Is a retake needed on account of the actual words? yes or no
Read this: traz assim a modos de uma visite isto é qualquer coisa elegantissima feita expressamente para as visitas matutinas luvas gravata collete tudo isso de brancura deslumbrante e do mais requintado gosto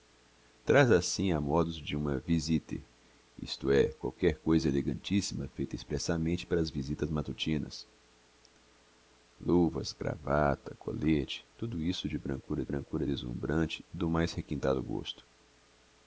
yes